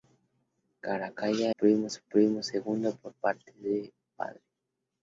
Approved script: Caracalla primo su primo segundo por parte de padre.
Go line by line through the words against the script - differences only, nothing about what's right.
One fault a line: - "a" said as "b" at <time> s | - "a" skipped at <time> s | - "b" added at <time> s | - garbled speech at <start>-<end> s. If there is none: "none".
none